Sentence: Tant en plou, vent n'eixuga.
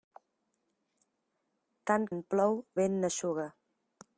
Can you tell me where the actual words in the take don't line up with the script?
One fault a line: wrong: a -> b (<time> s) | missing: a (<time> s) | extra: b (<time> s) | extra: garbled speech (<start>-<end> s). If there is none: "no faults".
no faults